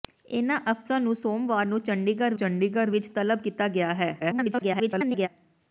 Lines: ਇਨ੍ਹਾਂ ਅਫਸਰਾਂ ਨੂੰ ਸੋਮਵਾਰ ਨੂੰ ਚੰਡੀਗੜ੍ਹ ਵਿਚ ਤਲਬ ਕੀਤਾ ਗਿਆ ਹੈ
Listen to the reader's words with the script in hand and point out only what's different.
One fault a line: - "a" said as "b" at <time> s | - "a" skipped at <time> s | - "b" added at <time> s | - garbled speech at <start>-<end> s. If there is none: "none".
- "ਚੰਡੀਗੜ੍ਹ" added at 2.3 s
- garbled speech at 4.2-5.3 s